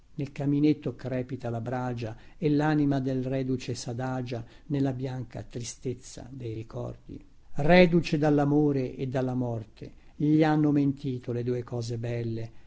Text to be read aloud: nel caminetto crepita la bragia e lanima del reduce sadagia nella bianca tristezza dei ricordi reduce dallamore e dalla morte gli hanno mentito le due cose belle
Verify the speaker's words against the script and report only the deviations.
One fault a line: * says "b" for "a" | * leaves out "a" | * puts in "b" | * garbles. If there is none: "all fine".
all fine